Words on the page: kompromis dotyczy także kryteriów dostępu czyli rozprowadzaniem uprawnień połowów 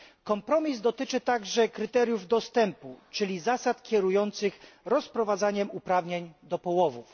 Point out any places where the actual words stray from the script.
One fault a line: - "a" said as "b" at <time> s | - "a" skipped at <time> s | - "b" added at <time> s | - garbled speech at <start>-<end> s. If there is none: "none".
- "zasad kierujących" added at 3.4 s
- "do" added at 6.4 s